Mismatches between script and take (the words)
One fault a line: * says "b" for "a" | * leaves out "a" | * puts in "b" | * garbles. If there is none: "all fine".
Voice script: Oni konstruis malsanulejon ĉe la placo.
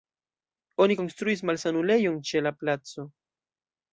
all fine